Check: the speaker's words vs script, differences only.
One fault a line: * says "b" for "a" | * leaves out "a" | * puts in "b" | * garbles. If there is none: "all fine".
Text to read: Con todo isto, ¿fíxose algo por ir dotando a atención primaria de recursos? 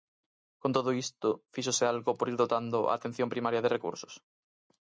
all fine